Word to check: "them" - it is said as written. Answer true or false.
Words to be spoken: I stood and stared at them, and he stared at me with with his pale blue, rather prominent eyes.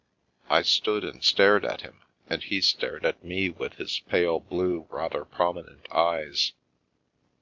false